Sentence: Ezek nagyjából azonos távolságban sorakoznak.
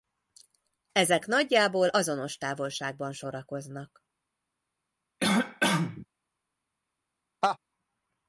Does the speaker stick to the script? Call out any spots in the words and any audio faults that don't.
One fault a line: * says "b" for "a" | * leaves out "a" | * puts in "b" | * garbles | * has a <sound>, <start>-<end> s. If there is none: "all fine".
* has a cough, 5.2-6.1 s
* has a laugh, 7.4-7.6 s